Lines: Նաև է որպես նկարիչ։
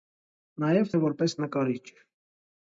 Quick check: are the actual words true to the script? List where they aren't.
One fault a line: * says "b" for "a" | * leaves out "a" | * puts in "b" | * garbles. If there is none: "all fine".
all fine